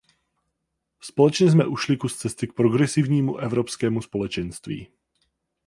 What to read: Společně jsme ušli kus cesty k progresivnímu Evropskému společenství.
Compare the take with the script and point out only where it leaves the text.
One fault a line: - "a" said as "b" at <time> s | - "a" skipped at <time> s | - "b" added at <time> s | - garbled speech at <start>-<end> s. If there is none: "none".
none